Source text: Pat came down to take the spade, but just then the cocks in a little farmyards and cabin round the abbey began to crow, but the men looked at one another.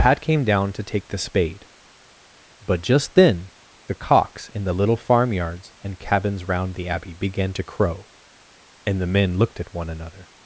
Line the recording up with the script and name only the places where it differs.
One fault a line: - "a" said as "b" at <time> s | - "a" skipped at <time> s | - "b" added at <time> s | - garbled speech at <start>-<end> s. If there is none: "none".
- "a" said as "the" at 4.6 s
- "cabin" said as "cabins" at 6.0 s
- "but" said as "and" at 8.8 s